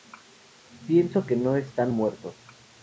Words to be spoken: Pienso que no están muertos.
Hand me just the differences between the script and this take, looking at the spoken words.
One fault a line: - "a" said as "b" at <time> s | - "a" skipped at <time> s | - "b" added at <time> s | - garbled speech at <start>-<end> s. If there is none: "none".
none